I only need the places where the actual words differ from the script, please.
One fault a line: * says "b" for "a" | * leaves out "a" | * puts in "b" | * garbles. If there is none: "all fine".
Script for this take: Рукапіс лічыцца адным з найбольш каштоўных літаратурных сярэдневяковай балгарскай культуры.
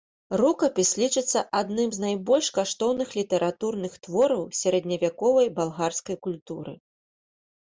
* puts in "твораў"